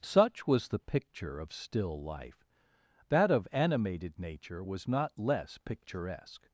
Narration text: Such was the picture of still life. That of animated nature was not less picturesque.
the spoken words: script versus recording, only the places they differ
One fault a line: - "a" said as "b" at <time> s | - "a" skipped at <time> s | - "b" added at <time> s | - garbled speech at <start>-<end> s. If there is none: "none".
none